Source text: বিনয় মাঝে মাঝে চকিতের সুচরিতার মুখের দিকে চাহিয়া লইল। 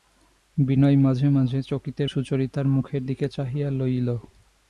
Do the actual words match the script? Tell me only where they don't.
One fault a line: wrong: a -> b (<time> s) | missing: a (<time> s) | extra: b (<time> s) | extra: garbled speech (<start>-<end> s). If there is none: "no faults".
no faults